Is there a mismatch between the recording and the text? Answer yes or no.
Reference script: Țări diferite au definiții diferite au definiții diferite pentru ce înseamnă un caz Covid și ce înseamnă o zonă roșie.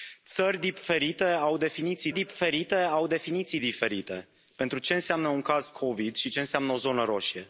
no